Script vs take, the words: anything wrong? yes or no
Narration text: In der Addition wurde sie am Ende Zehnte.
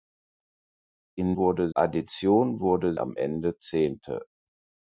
yes